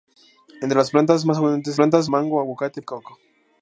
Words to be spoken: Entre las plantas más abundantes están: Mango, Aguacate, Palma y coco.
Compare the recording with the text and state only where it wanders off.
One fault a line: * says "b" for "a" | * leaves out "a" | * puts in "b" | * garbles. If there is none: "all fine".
* says "plantas" for "están"
* leaves out "Palma"